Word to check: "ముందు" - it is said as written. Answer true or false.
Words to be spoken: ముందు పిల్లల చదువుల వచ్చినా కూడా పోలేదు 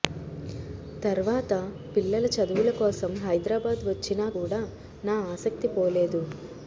false